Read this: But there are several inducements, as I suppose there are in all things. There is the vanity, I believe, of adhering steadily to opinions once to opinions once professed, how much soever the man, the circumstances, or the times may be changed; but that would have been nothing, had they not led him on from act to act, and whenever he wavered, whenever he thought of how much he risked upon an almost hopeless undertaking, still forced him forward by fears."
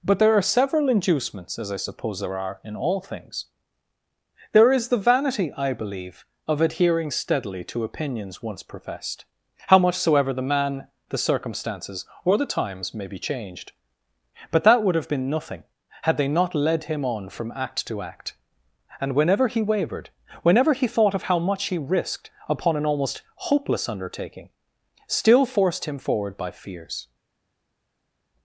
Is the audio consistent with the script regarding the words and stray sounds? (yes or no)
no